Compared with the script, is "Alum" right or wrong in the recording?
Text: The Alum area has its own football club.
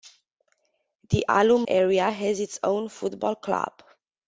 right